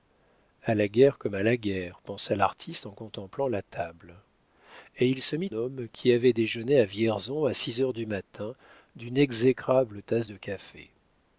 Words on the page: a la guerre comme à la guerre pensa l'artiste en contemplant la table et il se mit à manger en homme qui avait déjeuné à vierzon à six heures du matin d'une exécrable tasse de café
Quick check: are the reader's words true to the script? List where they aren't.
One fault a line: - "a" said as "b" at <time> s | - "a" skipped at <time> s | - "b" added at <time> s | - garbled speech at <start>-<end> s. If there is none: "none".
- "à manger en" skipped at 5.5 s